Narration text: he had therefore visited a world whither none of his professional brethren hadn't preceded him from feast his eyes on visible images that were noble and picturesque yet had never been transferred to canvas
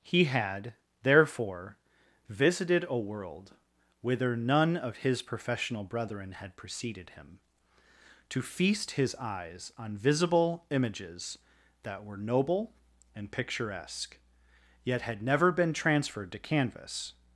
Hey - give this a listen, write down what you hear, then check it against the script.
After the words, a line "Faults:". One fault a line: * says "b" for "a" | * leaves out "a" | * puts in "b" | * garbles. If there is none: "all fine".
he had therefore visited a world whither none of his professional brethren had preceded him to feast his eyes on visible images that were noble and picturesque yet had never been transferred to canvas
Faults:
* says "had" for "hadn't"
* says "to" for "from"